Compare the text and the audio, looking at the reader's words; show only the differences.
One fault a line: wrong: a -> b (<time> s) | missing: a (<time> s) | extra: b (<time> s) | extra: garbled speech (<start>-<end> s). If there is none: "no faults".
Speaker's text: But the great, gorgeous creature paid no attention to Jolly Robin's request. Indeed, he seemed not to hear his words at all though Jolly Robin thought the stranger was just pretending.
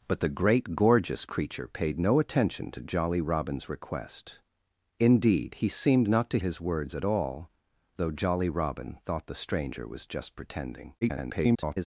missing: hear (6.4 s)
extra: garbled speech (11.0-11.9 s)